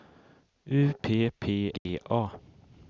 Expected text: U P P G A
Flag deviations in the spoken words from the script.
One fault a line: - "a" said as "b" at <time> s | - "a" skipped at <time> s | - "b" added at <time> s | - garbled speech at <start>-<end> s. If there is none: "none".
none